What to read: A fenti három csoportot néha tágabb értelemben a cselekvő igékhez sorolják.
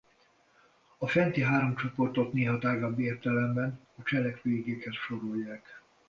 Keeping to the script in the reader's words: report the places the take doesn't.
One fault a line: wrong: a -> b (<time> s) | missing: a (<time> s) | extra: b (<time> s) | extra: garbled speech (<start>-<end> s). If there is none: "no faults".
no faults